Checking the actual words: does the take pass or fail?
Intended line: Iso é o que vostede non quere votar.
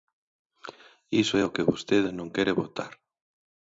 pass